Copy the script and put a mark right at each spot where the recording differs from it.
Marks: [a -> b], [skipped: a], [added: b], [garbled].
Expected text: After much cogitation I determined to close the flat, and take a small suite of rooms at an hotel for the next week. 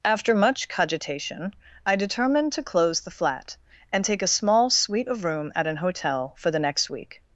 After much cogitation I determined to close the flat, and take a small suite of [rooms -> room] at an hotel for the next week.